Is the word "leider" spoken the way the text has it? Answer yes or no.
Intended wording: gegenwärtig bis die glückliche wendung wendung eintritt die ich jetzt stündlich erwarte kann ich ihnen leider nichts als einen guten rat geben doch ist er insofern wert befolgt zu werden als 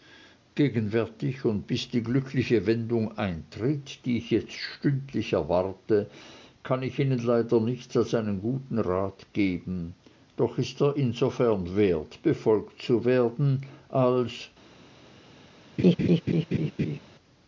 yes